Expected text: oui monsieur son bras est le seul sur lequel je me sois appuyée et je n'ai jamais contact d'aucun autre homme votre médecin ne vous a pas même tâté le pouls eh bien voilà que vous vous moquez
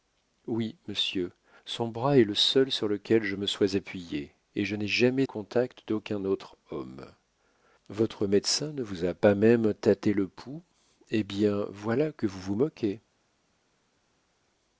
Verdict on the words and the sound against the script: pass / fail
pass